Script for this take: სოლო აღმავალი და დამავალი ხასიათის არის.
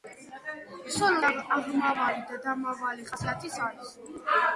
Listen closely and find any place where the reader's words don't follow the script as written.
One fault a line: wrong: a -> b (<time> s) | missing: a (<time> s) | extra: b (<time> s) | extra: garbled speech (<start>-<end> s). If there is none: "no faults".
no faults